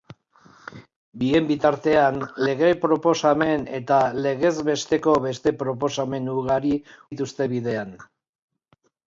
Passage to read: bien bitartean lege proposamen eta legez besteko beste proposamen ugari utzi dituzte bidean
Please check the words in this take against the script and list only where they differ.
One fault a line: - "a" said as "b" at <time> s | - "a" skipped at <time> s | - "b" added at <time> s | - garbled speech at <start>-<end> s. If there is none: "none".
- "utzi" skipped at 6.8 s